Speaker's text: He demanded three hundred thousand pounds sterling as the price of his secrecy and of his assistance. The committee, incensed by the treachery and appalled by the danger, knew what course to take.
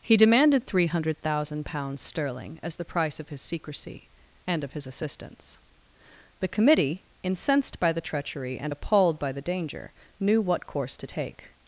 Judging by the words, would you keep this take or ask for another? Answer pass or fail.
pass